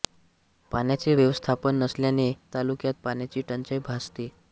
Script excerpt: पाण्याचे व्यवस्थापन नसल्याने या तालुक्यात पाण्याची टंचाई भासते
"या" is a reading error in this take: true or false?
true